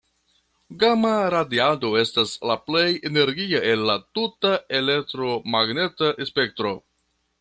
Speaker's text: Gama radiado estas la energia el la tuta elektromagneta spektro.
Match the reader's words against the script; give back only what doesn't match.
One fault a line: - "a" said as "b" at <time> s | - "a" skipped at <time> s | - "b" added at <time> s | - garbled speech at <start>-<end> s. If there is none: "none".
- "plej" added at 2.7 s